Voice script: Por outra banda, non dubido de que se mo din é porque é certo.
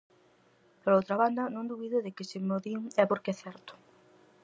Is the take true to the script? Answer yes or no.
yes